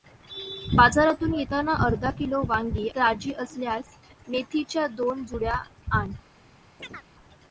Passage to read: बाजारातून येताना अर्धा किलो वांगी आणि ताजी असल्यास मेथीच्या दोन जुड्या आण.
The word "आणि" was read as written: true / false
false